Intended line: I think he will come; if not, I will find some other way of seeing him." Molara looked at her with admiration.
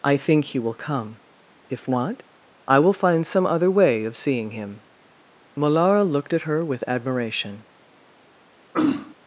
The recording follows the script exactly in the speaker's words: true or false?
true